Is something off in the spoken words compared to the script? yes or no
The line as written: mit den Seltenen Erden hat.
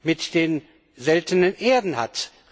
no